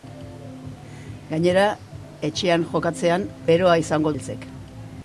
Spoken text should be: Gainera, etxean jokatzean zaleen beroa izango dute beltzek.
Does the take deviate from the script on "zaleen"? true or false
true